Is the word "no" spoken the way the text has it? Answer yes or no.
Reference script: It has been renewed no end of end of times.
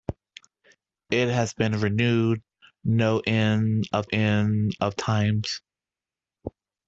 yes